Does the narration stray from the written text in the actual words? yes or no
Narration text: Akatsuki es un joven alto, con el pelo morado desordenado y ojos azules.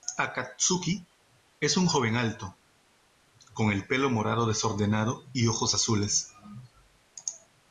no